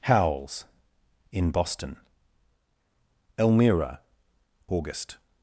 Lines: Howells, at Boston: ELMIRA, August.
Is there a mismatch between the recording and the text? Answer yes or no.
yes